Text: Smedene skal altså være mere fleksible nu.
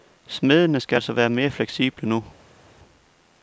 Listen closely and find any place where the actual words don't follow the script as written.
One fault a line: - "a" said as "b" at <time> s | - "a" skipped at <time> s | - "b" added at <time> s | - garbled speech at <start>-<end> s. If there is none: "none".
none